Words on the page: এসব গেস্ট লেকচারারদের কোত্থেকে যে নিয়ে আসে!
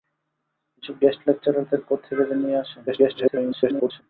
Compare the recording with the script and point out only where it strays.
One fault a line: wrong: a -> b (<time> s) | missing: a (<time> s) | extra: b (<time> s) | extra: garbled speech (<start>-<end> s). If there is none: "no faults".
extra: garbled speech (2.9-4.0 s)